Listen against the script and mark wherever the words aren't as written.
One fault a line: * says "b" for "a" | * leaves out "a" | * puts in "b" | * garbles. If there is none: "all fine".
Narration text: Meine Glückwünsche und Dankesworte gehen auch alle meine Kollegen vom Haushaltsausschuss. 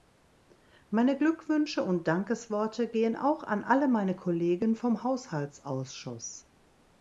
* puts in "an"